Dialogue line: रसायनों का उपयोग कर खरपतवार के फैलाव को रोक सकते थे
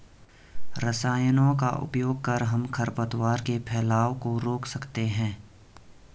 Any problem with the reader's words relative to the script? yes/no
yes